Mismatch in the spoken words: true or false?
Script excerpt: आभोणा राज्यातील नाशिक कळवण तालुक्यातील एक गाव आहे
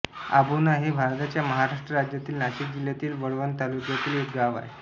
true